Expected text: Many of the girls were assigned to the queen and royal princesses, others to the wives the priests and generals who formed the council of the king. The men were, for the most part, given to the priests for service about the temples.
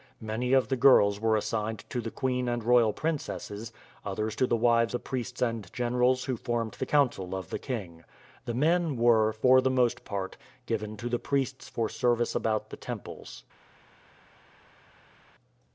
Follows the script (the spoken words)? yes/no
yes